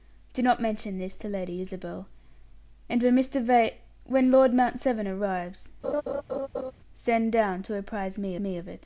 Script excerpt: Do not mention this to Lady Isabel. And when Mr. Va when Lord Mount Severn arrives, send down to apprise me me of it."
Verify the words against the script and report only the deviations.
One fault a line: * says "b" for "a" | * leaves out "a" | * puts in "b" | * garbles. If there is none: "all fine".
all fine